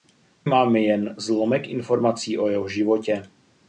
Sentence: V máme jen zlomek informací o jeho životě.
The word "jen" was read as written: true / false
true